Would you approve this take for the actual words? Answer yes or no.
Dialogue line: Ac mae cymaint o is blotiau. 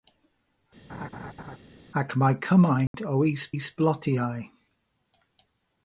no